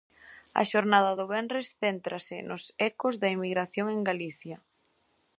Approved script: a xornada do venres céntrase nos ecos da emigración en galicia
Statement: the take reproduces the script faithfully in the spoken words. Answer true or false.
true